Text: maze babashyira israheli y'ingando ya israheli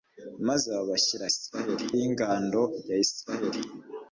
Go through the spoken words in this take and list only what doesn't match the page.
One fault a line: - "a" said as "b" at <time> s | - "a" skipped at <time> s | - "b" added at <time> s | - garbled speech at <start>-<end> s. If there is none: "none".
none